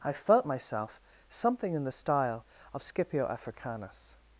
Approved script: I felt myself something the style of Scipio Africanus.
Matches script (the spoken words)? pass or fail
fail